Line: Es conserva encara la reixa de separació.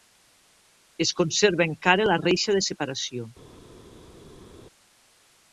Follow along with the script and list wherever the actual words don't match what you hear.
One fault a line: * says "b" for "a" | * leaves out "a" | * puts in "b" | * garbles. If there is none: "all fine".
all fine